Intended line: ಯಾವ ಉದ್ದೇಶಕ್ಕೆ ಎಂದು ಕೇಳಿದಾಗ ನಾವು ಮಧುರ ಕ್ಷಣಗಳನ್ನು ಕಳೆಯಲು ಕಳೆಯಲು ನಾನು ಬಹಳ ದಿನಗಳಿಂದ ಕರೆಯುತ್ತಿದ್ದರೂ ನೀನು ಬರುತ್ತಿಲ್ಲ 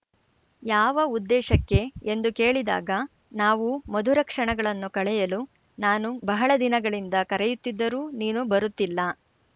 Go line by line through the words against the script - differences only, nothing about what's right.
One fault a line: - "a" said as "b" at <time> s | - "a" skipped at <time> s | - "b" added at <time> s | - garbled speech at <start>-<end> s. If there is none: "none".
- "ಕಳೆಯಲು" skipped at 5.4 s